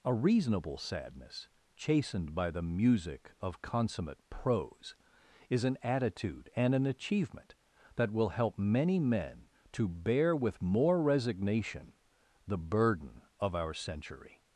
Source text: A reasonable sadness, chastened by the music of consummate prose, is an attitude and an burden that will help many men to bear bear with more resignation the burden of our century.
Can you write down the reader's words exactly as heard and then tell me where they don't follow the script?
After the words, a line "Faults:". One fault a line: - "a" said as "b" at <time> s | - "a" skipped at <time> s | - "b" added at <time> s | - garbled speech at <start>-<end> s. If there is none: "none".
A reasonable sadness, chastened by the music of consummate prose, is an attitude and an achievement that will help many men to bear with more resignation the burden of our century.
Faults:
- "burden" said as "achievement" at 6.9 s
- "bear" skipped at 10.3 s